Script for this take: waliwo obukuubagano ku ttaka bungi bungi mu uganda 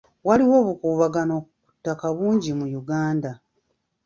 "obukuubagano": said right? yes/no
yes